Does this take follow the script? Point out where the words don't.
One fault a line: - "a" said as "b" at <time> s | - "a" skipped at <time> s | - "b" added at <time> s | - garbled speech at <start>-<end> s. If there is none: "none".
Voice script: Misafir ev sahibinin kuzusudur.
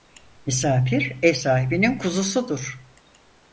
none